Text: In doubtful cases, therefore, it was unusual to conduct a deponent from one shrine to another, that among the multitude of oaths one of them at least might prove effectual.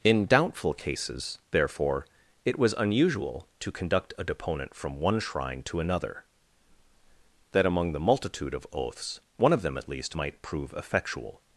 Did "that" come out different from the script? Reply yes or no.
no